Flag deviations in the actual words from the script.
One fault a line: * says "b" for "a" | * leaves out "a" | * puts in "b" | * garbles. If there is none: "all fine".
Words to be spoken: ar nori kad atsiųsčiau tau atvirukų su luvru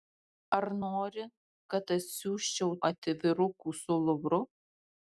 * leaves out "tau"